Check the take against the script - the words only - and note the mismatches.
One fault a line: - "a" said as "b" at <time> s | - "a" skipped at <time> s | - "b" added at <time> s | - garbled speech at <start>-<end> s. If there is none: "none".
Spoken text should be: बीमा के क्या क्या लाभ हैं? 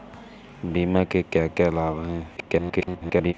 - garbled speech at 2.4-3.3 s